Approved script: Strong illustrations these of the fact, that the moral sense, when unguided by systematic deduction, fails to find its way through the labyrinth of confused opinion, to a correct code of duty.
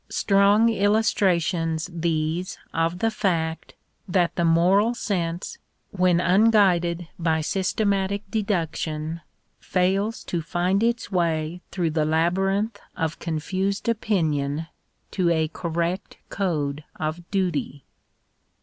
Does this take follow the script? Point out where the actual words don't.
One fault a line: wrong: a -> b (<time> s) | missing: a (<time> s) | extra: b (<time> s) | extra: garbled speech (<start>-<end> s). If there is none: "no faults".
no faults